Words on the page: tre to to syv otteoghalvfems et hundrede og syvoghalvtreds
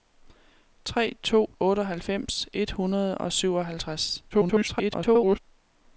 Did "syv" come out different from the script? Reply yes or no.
yes